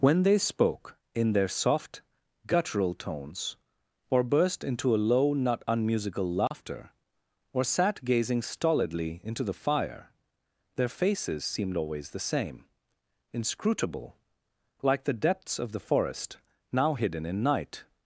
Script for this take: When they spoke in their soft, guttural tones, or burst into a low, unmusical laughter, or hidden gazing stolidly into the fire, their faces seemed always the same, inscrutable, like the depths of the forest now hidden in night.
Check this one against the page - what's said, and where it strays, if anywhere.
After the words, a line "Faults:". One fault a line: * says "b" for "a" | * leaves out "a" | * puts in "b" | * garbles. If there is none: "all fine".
When they spoke in their soft, guttural tones, or burst into a low, not unmusical laughter, or sat gazing stolidly into the fire, their faces seemed always the same, inscrutable, like the depths of the forest now hidden in night.
Faults:
* puts in "not"
* says "sat" for "hidden"